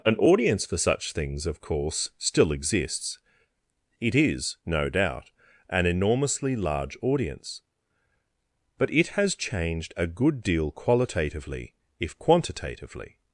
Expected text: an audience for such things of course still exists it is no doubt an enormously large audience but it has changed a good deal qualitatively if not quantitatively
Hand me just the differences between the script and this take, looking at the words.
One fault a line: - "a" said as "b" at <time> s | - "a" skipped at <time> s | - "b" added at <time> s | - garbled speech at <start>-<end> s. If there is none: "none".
- "not" skipped at 12.2 s